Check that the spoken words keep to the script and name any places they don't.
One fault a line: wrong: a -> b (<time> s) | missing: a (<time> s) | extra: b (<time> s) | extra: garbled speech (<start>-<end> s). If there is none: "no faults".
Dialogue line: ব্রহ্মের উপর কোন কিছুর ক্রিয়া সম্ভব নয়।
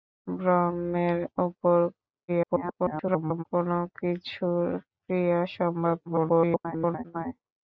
extra: garbled speech (2.3-3.4 s)
extra: garbled speech (6.1-7.0 s)